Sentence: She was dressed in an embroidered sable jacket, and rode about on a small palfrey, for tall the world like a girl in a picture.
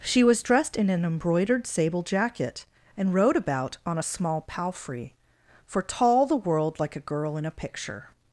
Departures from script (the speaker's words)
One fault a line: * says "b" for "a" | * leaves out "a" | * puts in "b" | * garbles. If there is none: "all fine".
all fine